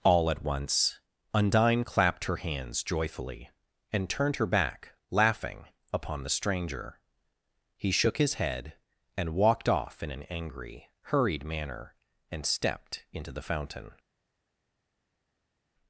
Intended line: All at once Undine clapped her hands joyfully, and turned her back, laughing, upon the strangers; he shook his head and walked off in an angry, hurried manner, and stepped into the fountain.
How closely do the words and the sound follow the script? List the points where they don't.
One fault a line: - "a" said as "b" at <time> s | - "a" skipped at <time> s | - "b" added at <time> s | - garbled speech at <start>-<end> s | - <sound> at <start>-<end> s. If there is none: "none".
- "strangers" said as "stranger" at 6.3 s